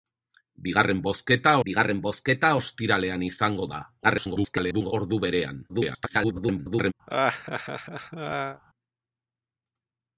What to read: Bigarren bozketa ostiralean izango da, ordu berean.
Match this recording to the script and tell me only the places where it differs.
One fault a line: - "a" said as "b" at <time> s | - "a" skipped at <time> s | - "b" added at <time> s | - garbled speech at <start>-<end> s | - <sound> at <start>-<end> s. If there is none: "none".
- "bigarren bozketa" added at 1.7 s
- garbled speech at 4.0-4.9 s
- garbled speech at 5.7-6.9 s
- laugh at 7.1-8.6 s